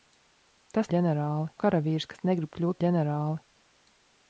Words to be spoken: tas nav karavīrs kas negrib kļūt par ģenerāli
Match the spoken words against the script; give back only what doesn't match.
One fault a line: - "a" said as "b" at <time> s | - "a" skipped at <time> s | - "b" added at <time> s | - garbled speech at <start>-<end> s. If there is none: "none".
- "nav" said as "ģenerāli" at 0.9 s
- "par" skipped at 2.8 s